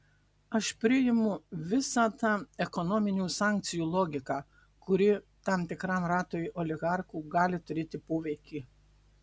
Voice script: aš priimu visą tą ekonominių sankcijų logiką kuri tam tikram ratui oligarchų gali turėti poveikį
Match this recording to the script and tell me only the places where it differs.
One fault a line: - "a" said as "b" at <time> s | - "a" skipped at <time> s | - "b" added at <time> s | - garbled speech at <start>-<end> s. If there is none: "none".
none